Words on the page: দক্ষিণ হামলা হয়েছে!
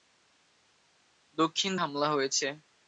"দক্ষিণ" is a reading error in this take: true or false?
false